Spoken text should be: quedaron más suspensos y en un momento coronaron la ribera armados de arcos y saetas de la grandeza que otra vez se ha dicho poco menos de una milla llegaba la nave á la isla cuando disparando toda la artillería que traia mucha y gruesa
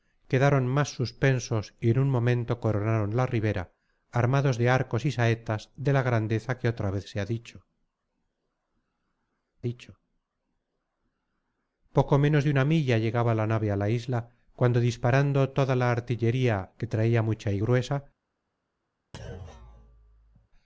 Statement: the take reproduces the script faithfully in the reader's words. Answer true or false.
false